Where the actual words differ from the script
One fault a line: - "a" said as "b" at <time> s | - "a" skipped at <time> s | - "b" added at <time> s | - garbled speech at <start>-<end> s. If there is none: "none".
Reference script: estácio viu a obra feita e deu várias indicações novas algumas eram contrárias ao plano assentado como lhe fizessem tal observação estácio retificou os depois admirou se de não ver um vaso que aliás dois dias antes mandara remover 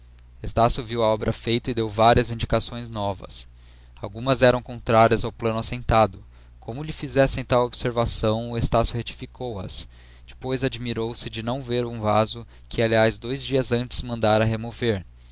- "os" said as "as" at 9.6 s